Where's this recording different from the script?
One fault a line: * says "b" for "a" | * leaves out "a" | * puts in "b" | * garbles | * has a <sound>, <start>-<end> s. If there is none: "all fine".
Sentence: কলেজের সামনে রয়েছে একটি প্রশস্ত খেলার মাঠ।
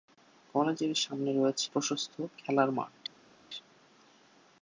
* leaves out "একটি"